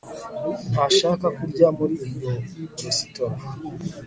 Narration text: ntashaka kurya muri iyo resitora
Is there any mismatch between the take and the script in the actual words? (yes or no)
no